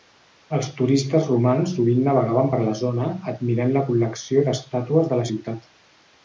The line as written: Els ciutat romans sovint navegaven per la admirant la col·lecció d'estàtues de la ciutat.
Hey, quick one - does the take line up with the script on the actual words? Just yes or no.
no